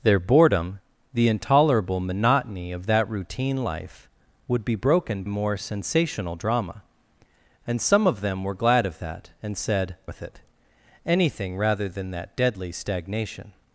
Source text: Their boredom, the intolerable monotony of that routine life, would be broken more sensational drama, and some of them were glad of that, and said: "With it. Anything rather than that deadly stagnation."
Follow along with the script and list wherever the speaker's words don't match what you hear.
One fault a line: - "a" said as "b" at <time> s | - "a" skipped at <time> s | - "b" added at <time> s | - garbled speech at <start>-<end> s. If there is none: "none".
none